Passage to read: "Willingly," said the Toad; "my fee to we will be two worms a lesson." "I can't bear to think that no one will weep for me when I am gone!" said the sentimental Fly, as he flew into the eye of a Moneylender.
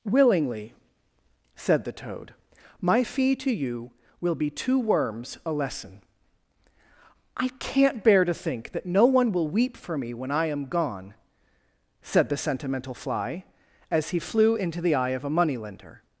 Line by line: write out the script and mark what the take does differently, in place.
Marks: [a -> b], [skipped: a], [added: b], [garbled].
"Willingly," said the Toad; "my fee to [we -> you] will be two worms a lesson." "I can't bear to think that no one will weep for me when I am gone!" said the sentimental Fly, as he flew into the eye of a Moneylender.